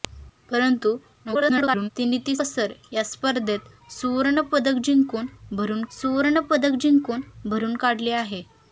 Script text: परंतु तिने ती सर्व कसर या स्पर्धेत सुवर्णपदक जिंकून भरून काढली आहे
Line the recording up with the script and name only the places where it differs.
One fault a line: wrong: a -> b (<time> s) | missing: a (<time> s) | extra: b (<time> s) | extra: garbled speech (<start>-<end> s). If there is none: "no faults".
extra: garbled speech (1.2-1.9 s)
missing: सर्व (2.4 s)
extra: सुवर्णपदक जिंकून भरून (5.9 s)